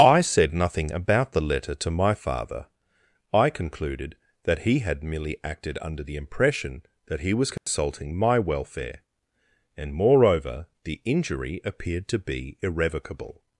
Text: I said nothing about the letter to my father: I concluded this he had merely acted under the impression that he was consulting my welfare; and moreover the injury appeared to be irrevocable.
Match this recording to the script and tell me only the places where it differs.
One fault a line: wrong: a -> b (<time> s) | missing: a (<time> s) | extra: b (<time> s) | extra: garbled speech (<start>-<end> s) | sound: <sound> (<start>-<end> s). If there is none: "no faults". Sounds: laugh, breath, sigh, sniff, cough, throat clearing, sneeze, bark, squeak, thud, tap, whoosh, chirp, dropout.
wrong: this -> that (4.5 s)
sound: dropout (7.6-7.7 s)